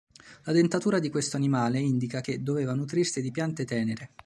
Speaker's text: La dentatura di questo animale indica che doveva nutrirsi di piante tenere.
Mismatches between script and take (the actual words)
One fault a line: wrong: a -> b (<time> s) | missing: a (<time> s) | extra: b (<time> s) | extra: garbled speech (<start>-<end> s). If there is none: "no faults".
no faults